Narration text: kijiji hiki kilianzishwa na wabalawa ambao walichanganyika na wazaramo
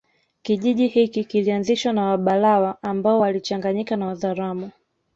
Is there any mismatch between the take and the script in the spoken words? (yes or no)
no